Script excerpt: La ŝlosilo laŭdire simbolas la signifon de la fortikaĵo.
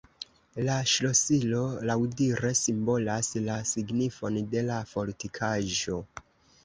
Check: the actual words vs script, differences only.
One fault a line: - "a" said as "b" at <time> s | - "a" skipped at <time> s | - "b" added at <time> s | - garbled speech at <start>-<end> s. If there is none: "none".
none